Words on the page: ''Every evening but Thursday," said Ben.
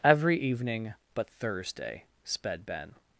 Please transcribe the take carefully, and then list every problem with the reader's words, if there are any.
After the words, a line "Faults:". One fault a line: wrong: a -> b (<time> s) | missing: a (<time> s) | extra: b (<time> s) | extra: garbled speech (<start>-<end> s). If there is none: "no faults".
''Every evening but Thursday," sped Ben.
Faults:
wrong: said -> sped (2.2 s)